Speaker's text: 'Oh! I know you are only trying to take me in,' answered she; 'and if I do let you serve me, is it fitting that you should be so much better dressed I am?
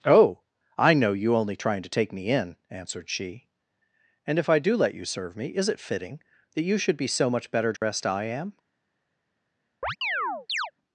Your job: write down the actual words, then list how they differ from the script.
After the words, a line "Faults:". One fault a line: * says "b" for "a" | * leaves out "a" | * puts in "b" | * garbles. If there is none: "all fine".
'Oh! I know you only trying to take me in,' answered she; 'and if I do let you serve me, is it fitting that you should be so much better dressed I am?
Faults:
* leaves out "are"